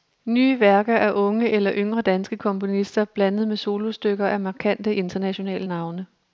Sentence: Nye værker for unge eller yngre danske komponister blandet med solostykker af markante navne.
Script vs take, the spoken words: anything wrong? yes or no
yes